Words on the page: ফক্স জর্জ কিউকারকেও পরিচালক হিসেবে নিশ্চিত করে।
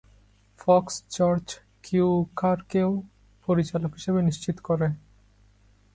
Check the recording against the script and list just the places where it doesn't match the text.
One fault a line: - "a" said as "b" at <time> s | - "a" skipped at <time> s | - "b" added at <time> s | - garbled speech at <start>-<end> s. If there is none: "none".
none